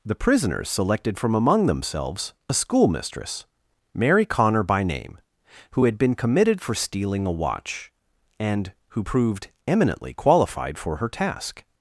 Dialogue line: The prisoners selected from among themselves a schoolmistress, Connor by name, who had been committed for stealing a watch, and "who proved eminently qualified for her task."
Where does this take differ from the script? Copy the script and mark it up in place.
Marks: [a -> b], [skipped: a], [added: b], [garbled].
The prisoners selected from among themselves a schoolmistress, [added: Mary] Connor by name, who had been committed for stealing a watch, and "who proved eminently qualified for her task."